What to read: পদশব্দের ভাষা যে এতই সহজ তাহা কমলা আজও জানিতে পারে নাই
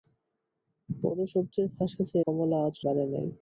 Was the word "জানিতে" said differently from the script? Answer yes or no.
yes